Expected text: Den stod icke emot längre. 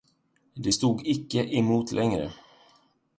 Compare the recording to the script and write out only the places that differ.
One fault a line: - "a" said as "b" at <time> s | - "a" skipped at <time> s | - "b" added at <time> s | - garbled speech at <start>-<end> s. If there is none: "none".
- "Den" said as "Det" at 0.5 s